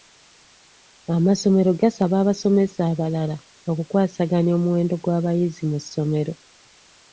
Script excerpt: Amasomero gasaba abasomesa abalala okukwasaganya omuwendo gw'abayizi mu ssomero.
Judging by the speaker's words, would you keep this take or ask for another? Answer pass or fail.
pass